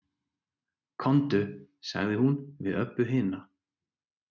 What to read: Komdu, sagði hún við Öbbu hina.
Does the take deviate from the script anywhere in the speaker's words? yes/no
no